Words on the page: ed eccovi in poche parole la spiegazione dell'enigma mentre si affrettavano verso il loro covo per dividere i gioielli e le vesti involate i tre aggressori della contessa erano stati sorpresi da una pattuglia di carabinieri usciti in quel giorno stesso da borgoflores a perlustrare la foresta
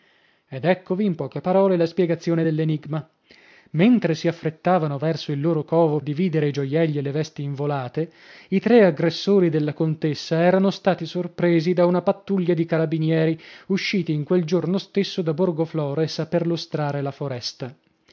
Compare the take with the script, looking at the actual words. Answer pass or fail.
fail